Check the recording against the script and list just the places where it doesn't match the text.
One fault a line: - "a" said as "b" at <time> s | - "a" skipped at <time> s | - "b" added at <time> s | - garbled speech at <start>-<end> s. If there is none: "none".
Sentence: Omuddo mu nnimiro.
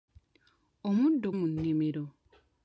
none